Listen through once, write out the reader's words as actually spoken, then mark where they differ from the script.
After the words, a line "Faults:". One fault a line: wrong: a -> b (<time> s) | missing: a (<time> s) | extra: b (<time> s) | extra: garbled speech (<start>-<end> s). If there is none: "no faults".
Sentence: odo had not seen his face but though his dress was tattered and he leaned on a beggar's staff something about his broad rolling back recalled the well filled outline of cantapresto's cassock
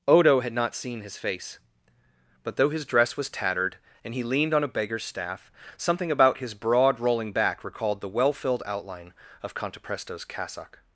odo had not seen his face but though his dress was tattered and he leaned on a beggar's staff something about his broad rolling back recalled the well filled outline of cantapresto's cassock
Faults:
no faults